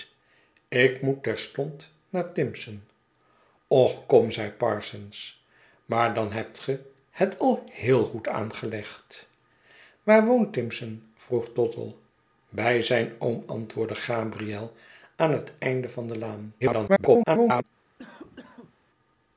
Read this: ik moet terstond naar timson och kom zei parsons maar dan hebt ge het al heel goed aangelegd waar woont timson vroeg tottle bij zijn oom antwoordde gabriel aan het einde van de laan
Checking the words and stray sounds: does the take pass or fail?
fail